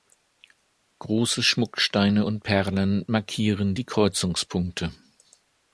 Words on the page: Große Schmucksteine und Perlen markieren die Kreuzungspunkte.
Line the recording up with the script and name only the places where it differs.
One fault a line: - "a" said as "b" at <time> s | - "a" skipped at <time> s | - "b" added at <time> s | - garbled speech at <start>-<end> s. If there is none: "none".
none